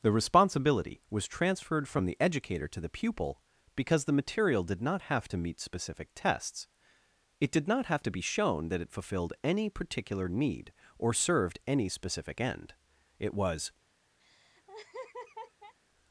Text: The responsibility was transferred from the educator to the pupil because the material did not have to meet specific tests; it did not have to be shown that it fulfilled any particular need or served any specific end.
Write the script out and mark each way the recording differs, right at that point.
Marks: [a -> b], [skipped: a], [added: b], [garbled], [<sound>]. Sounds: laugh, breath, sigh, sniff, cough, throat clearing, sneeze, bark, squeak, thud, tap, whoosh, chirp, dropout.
The responsibility was transferred from the educator to the pupil because the material did not have to meet specific tests; it did not have to be shown that it fulfilled any particular need or served any specific end. [added: It was] [laugh]